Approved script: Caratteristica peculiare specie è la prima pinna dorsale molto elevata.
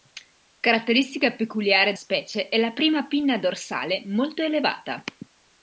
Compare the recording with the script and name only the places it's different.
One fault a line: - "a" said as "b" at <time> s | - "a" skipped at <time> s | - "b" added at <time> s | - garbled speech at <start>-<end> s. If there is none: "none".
none